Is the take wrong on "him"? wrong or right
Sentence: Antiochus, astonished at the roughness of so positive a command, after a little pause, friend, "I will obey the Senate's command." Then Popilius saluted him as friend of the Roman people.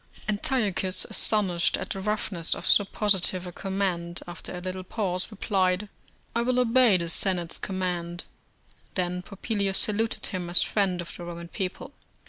right